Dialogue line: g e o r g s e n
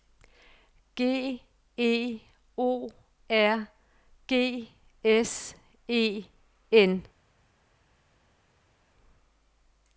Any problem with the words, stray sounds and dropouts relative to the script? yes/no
no